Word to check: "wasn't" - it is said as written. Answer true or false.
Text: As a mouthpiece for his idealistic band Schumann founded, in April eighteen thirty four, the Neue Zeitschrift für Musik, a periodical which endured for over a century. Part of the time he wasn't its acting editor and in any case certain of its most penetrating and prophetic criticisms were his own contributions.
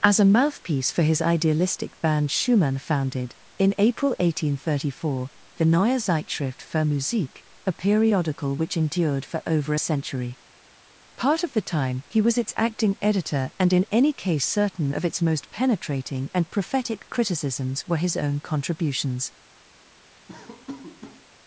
false